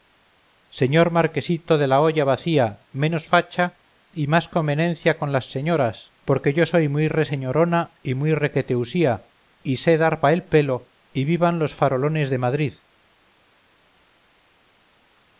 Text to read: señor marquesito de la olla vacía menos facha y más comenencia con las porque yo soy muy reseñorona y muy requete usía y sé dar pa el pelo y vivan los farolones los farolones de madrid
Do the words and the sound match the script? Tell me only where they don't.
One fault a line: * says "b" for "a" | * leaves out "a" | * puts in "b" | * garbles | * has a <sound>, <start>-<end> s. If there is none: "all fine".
* puts in "señoras"
* leaves out "los farolones"